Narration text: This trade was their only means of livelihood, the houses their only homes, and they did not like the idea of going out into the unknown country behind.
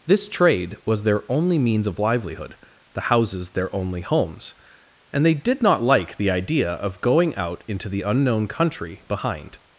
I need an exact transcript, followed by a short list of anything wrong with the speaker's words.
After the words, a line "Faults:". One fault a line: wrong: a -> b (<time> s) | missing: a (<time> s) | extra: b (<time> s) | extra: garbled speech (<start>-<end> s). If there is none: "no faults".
This trade was their only means of livelihood, the houses their only homes, and they did not like the idea of going out into the unknown country behind.
Faults:
no faults